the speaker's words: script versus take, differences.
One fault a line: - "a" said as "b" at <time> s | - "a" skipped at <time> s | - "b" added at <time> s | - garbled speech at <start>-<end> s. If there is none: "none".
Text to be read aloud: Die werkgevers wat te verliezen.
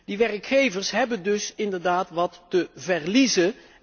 - "hebben dus inderdaad" added at 0.9 s